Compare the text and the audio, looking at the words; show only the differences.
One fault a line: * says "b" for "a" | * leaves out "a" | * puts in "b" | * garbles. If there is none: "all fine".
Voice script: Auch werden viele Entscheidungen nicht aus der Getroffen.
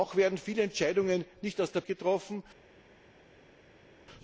all fine